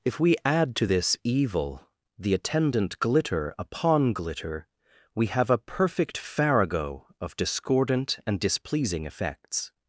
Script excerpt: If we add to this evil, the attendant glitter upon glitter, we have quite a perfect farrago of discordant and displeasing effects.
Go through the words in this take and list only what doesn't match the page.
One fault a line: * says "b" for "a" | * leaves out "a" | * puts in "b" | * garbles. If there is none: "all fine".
* leaves out "quite"